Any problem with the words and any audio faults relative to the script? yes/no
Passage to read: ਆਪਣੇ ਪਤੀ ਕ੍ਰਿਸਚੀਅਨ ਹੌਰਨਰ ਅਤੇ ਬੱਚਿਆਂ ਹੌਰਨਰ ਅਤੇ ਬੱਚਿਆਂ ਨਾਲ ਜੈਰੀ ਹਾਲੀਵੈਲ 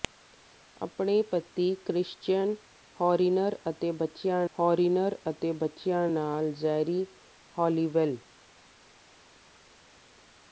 no